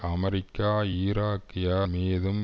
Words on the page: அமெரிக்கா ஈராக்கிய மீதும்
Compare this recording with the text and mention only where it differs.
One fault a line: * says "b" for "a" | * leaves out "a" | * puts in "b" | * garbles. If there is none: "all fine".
all fine